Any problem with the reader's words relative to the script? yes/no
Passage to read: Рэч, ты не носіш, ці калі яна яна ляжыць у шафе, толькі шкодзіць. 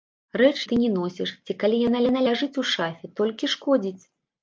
no